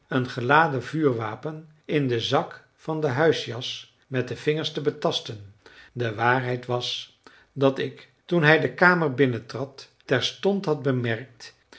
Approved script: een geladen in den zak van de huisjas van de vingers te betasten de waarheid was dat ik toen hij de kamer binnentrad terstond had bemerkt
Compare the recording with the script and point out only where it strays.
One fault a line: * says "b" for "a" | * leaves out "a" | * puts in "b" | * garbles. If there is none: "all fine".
* puts in "vuurwapen"
* says "met" for "van"